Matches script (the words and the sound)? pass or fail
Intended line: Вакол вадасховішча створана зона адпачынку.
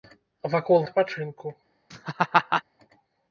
fail